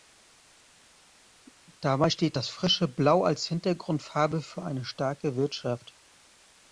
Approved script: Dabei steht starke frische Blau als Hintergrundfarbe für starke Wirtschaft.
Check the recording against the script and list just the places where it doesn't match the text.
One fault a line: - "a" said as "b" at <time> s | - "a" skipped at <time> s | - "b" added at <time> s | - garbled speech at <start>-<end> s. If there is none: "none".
- "starke" said as "das" at 2.3 s
- "eine" added at 4.6 s